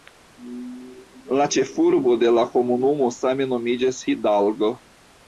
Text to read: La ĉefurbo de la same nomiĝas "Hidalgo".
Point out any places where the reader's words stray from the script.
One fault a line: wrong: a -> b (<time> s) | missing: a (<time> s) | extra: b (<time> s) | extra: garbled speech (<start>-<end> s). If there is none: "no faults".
extra: komunumo (2.5 s)